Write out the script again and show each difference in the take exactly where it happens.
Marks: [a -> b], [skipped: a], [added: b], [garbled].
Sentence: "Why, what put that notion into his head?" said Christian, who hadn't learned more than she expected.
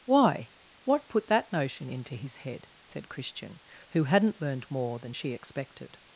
"Why, what put that notion into his head?" said Christian, who hadn't learned more than she expected.